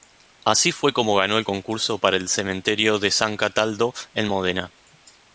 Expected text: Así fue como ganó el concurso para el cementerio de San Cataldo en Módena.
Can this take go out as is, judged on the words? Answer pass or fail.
pass